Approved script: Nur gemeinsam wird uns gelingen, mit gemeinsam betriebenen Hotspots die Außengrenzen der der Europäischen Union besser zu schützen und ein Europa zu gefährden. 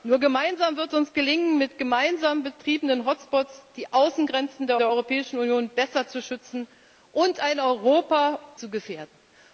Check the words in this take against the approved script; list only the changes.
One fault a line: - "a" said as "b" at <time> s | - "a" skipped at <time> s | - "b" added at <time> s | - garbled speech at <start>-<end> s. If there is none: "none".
none